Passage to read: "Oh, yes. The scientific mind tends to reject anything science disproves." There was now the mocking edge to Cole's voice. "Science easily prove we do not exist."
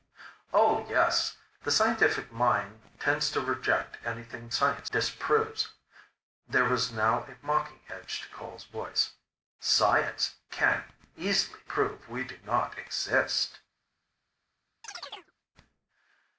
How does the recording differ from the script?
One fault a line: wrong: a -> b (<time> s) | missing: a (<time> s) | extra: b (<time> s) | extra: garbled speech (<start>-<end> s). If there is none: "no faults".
wrong: the -> a (7.2 s)
extra: can (10.5 s)